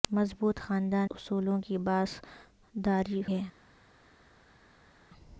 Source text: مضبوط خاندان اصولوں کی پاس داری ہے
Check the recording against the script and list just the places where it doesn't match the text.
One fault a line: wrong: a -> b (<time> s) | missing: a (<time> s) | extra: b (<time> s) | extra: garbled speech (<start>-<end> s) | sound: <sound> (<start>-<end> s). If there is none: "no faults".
no faults